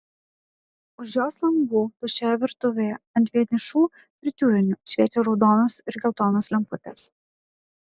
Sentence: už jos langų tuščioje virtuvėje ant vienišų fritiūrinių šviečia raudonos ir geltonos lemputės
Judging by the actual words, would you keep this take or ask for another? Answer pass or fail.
pass